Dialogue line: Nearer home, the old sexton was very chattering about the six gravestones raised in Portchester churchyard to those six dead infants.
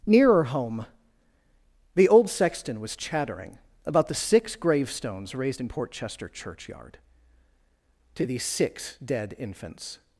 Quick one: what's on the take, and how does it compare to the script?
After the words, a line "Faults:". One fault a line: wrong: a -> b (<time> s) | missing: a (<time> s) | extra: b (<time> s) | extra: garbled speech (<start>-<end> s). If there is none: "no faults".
Nearer home, the old sexton was chattering about the six gravestones raised in Portchester churchyard to these six dead infants.
Faults:
missing: very (3.0 s)
wrong: those -> these (8.3 s)